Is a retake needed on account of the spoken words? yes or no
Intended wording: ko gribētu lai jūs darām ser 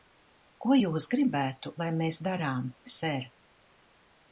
yes